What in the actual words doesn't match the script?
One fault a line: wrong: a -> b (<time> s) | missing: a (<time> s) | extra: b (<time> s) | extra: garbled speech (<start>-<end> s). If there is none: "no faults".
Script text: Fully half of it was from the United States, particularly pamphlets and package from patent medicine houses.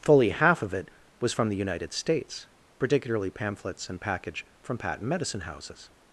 no faults